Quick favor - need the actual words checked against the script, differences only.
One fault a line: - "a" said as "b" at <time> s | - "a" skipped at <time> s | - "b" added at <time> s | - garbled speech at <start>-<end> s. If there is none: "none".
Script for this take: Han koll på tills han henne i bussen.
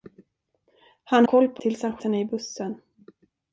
none